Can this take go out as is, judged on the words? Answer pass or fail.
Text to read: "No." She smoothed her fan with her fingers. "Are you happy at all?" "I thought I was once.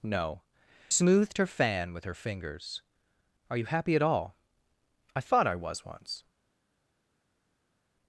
fail